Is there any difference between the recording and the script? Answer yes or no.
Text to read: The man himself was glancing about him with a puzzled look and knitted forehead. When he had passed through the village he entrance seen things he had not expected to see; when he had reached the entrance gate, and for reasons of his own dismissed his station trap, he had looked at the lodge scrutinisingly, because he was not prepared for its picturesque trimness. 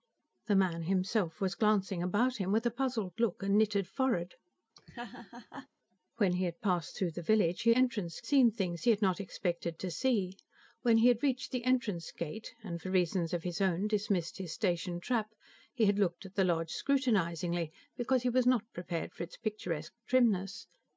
no